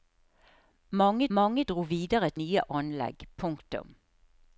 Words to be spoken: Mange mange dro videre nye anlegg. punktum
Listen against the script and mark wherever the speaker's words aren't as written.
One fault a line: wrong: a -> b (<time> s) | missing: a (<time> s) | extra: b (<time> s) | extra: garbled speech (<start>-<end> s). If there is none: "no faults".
no faults